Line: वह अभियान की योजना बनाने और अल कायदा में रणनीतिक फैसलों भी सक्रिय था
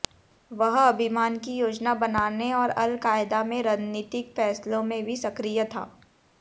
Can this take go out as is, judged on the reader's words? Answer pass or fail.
fail